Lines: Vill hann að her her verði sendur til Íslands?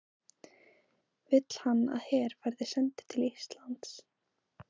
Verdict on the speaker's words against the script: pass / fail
fail